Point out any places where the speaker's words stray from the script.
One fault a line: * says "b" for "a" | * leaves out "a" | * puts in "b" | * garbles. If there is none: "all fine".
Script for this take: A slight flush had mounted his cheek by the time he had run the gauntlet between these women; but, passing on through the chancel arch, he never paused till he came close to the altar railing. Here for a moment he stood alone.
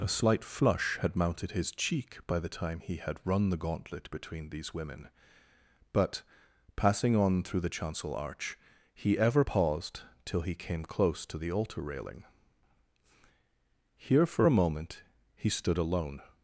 * says "ever" for "never"